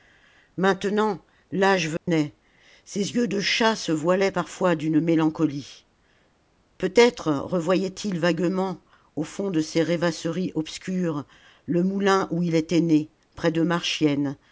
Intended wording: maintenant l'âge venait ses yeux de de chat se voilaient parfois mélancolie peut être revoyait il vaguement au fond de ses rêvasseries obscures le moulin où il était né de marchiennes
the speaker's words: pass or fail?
fail